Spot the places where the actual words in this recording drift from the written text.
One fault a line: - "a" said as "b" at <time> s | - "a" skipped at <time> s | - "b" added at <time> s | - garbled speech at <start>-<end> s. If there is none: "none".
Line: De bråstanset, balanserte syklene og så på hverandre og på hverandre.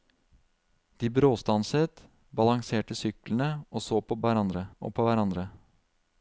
none